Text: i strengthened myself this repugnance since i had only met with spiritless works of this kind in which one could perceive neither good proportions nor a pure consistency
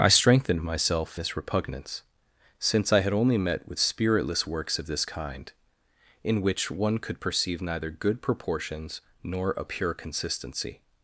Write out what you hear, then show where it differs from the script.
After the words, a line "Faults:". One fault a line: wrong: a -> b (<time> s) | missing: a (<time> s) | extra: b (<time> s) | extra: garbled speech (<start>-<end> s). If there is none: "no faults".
i strengthened myself this repugnance since i had only met with spiritless works of this kind in which one could perceive neither good proportions nor a pure consistency
Faults:
no faults